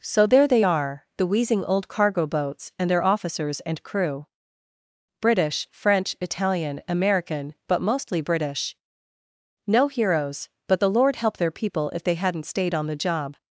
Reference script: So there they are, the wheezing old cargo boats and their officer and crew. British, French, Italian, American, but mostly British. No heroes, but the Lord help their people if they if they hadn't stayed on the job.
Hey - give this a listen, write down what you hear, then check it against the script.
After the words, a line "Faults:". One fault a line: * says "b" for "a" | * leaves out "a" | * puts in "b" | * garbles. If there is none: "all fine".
So there they are, the wheezing old cargo boats and their officers and crew. British, French, Italian, American, but mostly British. No heroes, but the Lord help their people if they hadn't stayed on the job.
Faults:
* says "officers" for "officer"
* leaves out "if they"